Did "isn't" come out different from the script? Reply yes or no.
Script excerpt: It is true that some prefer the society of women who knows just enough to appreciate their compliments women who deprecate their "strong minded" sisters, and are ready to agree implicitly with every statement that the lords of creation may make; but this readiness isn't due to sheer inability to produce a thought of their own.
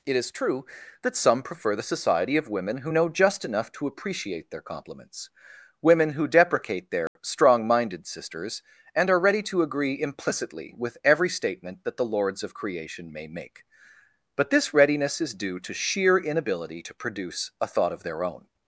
yes